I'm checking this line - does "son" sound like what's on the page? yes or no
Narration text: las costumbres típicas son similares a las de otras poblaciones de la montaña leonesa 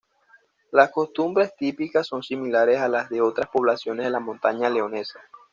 yes